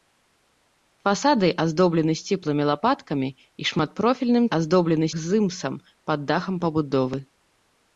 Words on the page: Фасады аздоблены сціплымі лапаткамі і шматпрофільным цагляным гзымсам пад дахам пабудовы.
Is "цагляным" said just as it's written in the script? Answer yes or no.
no